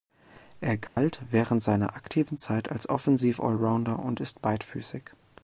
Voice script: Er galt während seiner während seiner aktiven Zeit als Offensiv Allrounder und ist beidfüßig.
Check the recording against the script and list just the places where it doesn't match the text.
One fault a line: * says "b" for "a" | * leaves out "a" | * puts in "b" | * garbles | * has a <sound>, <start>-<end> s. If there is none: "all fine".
* has a dropout, 0.9-1.0 s
* leaves out "während seiner"